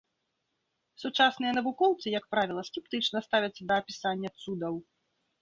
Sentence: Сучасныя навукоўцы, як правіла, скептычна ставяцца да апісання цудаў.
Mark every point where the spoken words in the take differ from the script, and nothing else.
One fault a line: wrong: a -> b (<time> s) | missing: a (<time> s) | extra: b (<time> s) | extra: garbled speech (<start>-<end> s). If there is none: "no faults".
no faults